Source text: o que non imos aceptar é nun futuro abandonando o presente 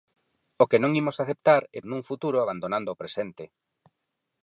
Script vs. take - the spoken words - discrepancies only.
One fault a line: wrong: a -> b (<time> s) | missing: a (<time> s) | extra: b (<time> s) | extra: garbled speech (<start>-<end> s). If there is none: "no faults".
no faults